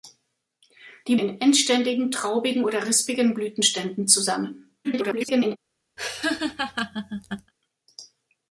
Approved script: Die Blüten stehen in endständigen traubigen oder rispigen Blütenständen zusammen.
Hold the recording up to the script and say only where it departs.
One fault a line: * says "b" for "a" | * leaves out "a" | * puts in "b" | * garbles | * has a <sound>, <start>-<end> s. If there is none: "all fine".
* leaves out "Blüten stehen"
* garbles
* has a laugh, 6.0-7.5 s